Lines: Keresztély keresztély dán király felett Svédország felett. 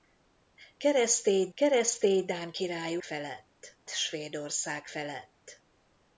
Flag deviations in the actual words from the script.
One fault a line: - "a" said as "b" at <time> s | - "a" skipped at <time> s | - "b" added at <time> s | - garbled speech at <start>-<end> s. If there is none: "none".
none